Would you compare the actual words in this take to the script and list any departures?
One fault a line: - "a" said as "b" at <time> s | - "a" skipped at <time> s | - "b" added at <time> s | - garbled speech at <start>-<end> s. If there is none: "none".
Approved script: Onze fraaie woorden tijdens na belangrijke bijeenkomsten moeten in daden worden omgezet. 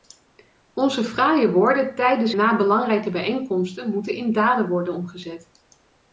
none